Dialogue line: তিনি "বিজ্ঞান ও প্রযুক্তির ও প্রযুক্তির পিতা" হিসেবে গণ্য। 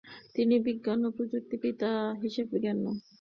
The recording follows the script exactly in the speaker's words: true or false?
false